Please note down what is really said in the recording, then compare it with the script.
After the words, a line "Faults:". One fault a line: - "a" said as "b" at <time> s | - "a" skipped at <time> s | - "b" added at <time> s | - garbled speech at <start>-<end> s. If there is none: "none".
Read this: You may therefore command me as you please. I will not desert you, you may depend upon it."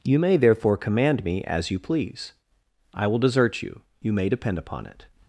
You may therefore command me as you please. I will desert you, you may depend upon it."
Faults:
- "not" skipped at 3.2 s